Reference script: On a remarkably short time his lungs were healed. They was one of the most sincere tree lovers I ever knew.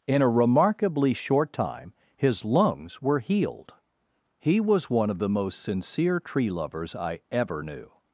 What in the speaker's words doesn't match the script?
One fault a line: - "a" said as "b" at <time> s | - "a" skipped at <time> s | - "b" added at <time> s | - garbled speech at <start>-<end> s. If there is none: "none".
- "On" said as "In" at 0.1 s
- "They" said as "He" at 4.4 s